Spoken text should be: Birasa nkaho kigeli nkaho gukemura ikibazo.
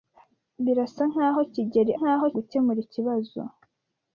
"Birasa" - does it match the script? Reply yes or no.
yes